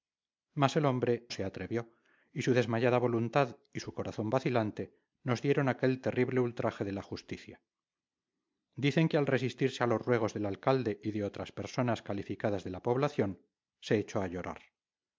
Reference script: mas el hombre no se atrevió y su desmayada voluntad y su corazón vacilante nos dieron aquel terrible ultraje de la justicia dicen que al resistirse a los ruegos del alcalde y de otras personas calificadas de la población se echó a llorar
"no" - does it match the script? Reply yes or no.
no